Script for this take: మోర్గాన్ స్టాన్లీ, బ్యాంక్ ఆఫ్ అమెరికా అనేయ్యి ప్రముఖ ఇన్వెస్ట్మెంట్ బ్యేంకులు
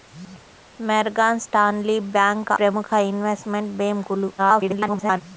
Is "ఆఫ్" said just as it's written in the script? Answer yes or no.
no